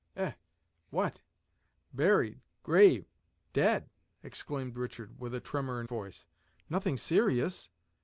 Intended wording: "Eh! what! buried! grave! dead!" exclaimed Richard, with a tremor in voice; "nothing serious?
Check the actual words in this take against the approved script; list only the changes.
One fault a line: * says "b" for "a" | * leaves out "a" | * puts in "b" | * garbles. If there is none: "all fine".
all fine